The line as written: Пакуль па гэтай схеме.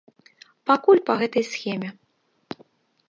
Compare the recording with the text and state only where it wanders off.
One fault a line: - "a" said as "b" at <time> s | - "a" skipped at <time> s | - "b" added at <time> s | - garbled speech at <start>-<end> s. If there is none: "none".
none